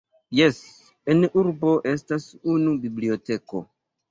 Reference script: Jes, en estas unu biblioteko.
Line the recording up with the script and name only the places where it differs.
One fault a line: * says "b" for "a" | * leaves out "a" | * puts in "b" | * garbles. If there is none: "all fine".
* puts in "urbo"